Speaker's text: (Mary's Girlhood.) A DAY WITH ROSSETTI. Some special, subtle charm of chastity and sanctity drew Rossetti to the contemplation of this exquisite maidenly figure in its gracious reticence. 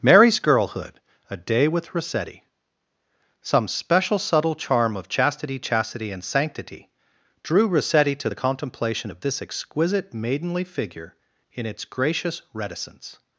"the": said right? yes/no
yes